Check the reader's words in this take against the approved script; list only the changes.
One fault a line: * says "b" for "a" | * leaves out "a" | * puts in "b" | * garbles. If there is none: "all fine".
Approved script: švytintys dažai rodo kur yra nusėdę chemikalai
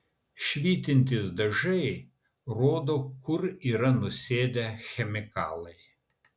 all fine